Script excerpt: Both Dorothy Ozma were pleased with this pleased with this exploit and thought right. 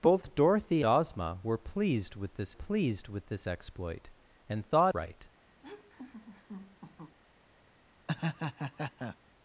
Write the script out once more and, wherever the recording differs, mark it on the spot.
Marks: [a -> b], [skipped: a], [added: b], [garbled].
Both Dorothy Ozma were pleased with this pleased with this exploit and thought right.